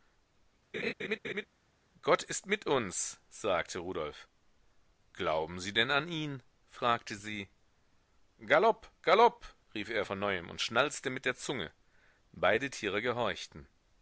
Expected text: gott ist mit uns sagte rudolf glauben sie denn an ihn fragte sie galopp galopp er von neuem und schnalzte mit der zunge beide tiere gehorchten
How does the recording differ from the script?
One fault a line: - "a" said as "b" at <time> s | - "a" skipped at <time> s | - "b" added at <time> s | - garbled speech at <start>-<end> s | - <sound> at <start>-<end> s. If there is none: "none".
- laugh at 0.7-1.5 s
- "rief" added at 9.7 s